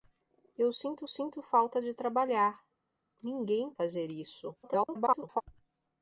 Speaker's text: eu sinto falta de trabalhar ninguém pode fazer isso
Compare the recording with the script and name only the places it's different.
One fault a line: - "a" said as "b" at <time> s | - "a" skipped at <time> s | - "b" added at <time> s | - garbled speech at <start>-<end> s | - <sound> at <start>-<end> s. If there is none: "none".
- "sinto" added at 1.0 s
- "pode" skipped at 3.7 s
- garbled speech at 4.6-5.4 s